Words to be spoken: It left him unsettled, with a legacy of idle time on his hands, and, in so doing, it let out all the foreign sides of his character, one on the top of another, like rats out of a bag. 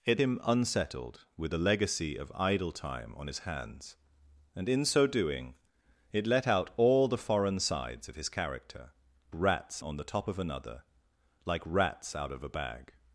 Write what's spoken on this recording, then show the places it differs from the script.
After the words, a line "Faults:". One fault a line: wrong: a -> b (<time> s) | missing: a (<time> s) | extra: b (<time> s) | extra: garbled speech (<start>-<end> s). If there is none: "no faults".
It him unsettled, with a legacy of idle time on his hands, and, in so doing, it let out all the foreign sides of his character, rats on the top of another, like rats out of a bag.
Faults:
missing: left (0.2 s)
wrong: one -> rats (9.3 s)